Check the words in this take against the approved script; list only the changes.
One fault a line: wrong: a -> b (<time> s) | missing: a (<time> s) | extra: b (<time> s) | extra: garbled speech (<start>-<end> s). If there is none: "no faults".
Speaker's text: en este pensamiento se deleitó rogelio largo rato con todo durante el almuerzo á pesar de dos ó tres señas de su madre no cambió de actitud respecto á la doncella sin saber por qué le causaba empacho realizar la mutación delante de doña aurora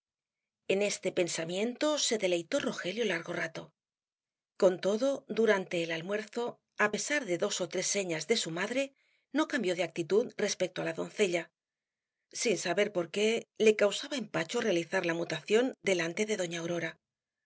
no faults